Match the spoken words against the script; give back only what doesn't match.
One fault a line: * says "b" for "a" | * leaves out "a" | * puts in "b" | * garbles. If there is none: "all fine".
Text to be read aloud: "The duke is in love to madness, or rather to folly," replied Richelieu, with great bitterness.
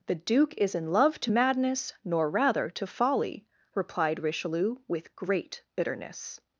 * says "nor" for "or"